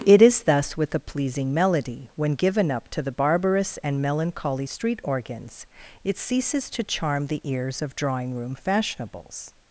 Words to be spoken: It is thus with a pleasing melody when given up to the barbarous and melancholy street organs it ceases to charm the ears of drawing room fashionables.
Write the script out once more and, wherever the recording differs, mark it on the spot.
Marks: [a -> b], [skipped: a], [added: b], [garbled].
It is thus with a pleasing melody when given up to the barbarous and melancholy street organs it ceases to charm the ears of drawing room fashionables.